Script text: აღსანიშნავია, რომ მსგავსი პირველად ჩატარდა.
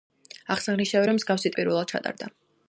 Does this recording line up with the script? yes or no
yes